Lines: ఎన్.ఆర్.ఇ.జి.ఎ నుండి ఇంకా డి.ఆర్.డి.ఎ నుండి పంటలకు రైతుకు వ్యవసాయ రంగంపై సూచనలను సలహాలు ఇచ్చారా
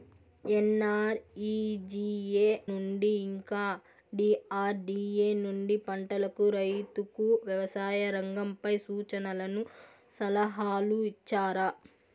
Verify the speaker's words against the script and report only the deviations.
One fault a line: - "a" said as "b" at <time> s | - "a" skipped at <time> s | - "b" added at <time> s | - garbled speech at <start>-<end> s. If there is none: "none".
none